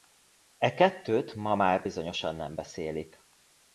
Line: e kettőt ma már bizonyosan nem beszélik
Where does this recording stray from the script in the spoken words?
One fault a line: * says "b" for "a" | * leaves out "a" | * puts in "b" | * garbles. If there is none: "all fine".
all fine